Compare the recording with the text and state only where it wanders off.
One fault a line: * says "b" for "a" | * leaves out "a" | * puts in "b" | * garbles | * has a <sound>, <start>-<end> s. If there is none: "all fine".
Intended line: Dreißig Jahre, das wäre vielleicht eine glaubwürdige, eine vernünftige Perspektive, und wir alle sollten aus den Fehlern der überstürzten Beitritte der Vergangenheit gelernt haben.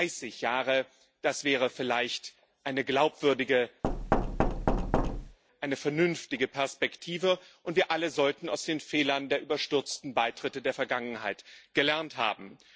* has a thud, 3.8-5.4 s